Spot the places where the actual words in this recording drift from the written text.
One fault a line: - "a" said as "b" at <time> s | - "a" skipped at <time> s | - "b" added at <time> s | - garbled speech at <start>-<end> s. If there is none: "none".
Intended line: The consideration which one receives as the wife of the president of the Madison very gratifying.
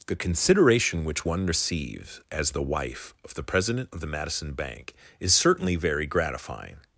- "bank is certainly" added at 4.5 s